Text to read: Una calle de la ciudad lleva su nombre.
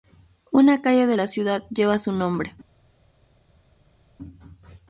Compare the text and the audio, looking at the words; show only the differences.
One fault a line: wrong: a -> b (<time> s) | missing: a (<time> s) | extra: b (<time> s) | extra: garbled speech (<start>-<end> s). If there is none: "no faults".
no faults